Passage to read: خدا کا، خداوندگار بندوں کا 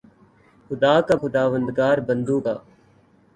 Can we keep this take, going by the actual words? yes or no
yes